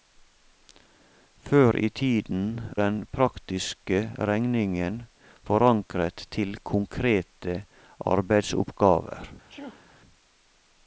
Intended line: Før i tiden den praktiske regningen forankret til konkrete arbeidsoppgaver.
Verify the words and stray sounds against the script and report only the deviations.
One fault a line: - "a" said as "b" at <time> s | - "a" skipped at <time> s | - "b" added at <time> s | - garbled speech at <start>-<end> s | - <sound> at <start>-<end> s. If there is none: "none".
- sneeze at 9.5-9.9 s